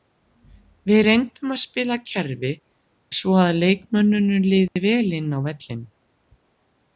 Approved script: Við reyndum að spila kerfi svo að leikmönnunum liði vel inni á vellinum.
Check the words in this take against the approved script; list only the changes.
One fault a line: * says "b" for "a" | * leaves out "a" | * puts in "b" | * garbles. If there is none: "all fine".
all fine